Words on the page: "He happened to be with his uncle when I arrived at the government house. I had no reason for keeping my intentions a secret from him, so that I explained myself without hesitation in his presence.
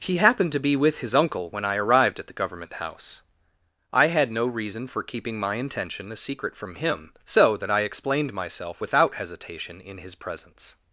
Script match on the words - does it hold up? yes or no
no